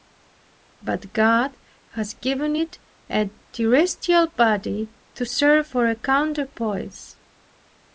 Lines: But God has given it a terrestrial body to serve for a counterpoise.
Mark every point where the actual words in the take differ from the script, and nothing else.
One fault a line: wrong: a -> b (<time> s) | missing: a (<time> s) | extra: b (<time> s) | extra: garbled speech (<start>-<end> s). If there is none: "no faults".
no faults